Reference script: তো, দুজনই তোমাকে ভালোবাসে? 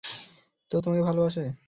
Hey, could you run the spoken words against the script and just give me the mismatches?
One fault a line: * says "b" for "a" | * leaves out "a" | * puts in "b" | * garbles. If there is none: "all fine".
* leaves out "দুজনই"